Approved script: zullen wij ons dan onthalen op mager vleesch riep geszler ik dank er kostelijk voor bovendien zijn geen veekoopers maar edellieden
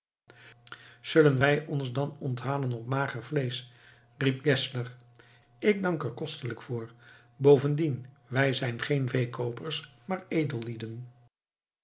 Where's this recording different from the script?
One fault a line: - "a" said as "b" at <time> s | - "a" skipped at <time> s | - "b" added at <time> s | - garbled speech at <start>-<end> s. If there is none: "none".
- "wij" added at 8.3 s